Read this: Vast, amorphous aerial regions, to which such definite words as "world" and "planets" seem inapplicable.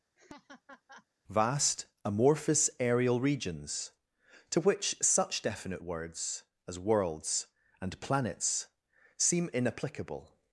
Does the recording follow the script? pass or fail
fail